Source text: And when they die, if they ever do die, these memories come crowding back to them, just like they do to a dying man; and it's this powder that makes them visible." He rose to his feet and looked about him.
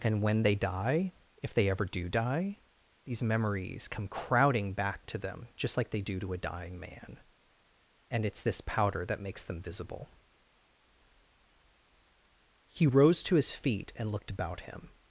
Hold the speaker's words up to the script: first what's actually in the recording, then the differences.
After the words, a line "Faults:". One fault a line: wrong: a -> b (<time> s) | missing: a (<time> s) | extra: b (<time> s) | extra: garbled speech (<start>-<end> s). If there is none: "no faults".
And when they die, if they ever do die, these memories come crowding back to them, just like they do to a dying man; and it's this powder that makes them visible." He rose to his feet and looked about him.
Faults:
no faults